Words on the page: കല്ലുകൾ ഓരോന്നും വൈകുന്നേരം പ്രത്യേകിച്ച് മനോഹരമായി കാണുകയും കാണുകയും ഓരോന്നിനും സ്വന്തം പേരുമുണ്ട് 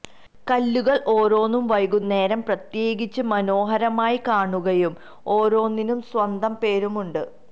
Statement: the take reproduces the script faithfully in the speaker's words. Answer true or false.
false